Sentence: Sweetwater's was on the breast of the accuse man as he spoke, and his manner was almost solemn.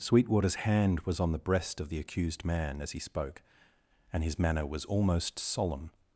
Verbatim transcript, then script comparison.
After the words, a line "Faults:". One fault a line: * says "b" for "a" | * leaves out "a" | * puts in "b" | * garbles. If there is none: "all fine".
Sweetwater's hand was on the breast of the accused man as he spoke, and his manner was almost solemn.
Faults:
* puts in "hand"
* says "accused" for "accuse"